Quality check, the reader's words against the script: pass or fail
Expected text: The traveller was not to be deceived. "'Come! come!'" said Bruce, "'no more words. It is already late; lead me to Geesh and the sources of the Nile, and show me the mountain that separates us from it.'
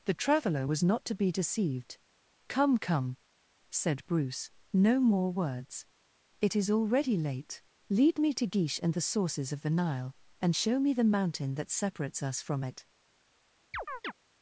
pass